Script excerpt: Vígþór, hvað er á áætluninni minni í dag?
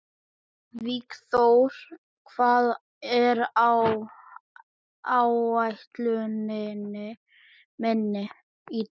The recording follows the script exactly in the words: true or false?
true